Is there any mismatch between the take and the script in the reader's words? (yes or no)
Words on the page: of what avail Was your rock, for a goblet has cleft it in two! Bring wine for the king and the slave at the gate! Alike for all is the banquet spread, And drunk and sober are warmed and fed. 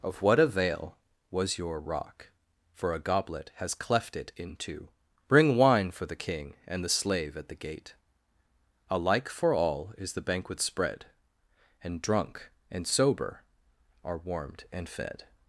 no